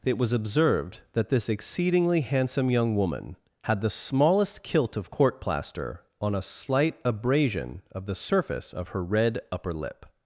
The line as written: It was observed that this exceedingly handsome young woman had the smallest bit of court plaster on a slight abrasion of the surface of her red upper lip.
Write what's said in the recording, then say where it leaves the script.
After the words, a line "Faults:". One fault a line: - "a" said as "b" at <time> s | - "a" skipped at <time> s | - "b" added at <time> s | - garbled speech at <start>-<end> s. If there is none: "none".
It was observed that this exceedingly handsome young woman had the smallest kilt of court plaster on a slight abrasion of the surface of her red upper lip.
Faults:
- "bit" said as "kilt" at 4.6 s